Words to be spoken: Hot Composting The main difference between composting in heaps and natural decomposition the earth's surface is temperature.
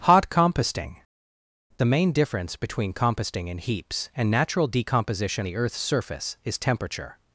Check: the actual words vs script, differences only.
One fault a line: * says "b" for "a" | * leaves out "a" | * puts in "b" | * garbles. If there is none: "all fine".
all fine